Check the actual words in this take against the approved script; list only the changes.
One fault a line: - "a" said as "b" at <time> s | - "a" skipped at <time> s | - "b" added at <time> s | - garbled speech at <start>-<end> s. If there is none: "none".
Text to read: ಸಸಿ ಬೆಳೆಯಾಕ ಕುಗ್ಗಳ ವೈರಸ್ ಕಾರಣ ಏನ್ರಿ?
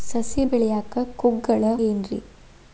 - "ವೈರಸ್ ಕಾರಣ" skipped at 1.6 s